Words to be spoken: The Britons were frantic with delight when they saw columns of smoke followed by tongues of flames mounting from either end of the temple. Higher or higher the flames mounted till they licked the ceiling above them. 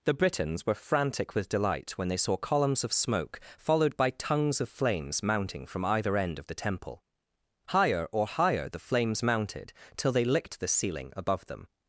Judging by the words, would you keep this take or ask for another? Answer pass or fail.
pass